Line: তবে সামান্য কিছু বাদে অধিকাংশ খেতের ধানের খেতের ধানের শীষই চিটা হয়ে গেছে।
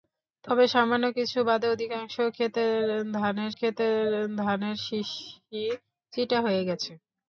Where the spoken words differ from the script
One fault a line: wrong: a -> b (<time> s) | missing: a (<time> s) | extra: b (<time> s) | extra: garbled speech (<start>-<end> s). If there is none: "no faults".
no faults